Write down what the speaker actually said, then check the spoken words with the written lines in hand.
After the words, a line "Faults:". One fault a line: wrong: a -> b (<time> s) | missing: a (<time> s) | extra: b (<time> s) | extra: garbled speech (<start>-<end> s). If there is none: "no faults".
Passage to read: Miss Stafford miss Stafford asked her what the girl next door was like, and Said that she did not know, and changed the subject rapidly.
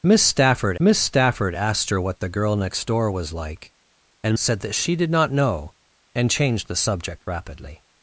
Miss Stafford miss Stafford asked her what the girl next door was like, and Said that she did not know, and changed the subject rapidly.
Faults:
no faults